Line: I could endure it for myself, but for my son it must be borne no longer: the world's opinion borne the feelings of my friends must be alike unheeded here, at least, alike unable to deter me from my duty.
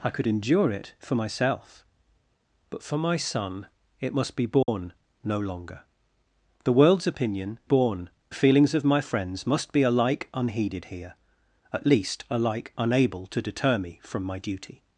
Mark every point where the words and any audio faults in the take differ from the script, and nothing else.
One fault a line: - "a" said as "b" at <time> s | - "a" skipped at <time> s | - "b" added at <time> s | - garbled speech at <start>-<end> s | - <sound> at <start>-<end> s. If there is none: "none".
- dropout at 4.6-4.7 s